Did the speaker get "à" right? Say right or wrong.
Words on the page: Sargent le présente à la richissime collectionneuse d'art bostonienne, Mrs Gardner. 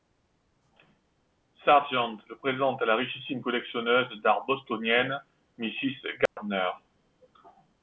right